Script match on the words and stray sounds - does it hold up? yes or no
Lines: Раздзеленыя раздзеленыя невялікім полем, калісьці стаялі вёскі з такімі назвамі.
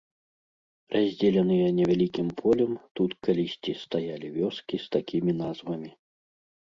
no